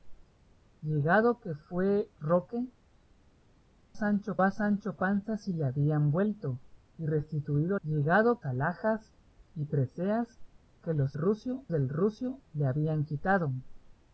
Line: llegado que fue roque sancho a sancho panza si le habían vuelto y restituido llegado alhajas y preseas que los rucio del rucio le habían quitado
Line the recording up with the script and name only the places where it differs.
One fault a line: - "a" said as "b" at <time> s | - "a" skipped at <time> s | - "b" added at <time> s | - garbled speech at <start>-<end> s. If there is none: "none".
none